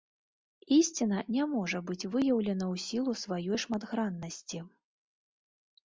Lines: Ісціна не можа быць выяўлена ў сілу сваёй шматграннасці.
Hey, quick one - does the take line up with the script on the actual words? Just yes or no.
yes